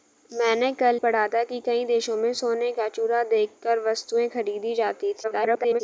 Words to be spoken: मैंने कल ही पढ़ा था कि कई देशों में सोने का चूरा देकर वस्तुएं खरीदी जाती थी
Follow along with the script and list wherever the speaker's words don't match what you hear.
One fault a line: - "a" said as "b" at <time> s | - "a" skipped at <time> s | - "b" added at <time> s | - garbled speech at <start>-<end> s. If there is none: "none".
- "ही" skipped at 1.0 s
- garbled speech at 5.2-5.8 s